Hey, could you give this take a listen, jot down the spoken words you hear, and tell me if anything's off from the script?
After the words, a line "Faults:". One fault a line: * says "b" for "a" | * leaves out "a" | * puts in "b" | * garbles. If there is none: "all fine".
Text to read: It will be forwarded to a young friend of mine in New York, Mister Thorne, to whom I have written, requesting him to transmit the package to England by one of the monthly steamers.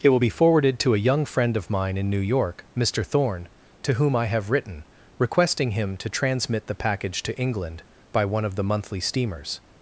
It will be forwarded to a young friend of mine in New York, Mister Thorne, to whom I have written, requesting him to transmit the package to England by one of the monthly steamers.
Faults:
all fine